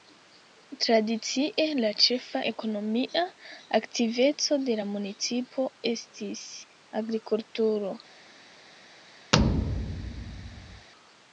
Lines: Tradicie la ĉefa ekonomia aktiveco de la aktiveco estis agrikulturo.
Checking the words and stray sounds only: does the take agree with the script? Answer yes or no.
no